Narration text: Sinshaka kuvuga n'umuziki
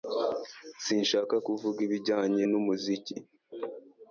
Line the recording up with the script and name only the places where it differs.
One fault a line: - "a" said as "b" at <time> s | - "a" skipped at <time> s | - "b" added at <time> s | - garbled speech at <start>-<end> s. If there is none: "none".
- "ibijyanye" added at 1.9 s